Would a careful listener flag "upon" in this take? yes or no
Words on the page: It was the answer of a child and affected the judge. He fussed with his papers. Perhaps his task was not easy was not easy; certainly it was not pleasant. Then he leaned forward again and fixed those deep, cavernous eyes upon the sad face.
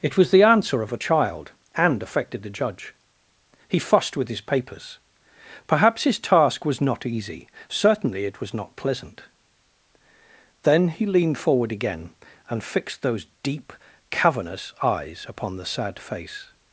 no